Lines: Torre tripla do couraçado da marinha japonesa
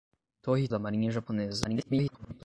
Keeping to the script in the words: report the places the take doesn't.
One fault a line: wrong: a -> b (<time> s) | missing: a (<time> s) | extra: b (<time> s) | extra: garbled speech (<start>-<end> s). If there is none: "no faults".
missing: tripla do couraçado (0.7 s)
extra: garbled speech (1.6-2.4 s)